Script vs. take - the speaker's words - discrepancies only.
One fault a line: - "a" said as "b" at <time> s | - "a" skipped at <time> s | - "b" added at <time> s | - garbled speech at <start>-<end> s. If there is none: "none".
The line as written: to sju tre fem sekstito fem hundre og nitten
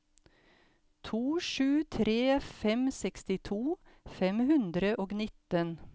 none